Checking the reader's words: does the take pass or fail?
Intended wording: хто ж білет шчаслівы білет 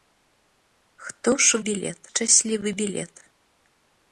pass